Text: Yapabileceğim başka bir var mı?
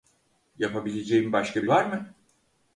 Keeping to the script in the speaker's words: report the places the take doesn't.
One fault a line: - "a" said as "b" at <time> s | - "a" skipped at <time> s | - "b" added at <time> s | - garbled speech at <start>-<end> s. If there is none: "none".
none